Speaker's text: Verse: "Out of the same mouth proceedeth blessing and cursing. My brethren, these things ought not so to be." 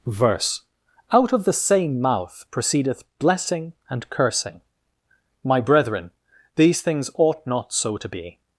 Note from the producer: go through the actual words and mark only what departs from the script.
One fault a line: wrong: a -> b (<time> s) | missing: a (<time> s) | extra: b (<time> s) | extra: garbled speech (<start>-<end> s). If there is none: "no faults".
no faults